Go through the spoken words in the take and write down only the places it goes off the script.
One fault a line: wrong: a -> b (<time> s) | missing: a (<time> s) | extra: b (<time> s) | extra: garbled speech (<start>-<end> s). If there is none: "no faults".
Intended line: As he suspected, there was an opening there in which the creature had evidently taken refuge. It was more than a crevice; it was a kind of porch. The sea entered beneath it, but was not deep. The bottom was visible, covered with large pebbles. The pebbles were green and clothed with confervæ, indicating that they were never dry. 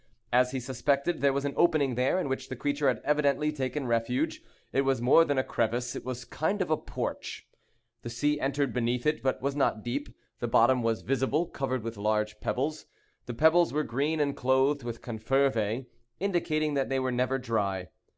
no faults